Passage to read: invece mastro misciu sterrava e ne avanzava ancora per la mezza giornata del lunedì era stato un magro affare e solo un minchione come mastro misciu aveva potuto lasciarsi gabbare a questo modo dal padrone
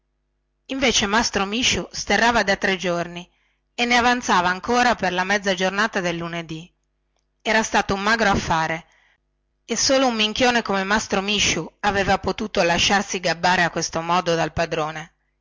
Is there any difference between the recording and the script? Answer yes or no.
yes